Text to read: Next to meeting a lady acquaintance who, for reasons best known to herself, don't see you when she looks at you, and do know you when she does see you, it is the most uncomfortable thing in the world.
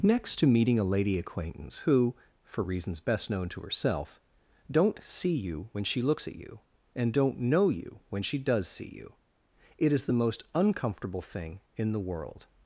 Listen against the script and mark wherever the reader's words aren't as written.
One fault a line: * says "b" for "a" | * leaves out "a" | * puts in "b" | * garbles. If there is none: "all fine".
* says "don't" for "do"